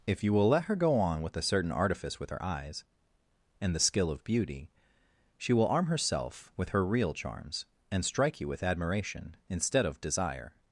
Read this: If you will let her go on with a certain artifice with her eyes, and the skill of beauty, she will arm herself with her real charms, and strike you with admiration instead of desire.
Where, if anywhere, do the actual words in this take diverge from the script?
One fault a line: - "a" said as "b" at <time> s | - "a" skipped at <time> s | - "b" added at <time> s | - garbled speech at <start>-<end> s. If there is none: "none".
none